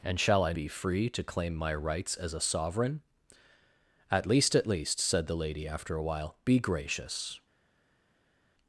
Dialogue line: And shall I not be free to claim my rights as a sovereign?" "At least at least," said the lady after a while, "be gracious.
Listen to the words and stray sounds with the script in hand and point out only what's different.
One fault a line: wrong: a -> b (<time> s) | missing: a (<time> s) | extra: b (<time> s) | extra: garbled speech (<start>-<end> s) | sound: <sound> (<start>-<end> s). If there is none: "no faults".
missing: not (0.5 s)